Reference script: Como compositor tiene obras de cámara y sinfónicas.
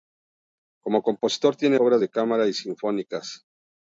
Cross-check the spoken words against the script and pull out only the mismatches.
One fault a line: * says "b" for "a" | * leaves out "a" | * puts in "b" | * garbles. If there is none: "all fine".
all fine